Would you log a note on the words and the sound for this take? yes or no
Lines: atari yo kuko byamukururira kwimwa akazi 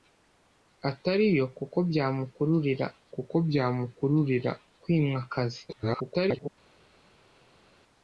yes